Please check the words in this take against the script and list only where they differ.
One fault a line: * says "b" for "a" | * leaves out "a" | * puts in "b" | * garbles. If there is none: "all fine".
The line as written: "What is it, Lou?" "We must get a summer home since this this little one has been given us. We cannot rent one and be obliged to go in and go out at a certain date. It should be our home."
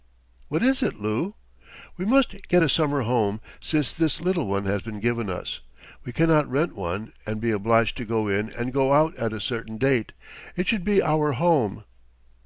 * leaves out "this"